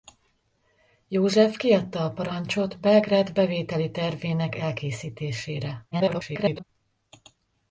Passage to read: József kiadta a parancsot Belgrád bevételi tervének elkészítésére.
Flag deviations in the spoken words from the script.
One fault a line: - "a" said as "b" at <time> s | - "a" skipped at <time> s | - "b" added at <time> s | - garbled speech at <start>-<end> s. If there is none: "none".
- garbled speech at 5.9-6.6 s